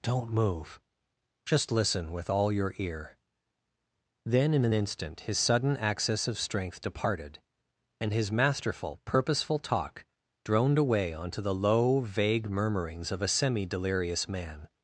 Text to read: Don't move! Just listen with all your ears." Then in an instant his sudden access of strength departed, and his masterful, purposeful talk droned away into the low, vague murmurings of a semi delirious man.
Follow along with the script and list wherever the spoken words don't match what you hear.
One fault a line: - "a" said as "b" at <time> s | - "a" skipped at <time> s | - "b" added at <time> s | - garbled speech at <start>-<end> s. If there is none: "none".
- "ears" said as "ear" at 2.8 s
- "into" said as "onto" at 11.1 s